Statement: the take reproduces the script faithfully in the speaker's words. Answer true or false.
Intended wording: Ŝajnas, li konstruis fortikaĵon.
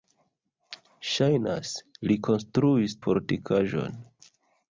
true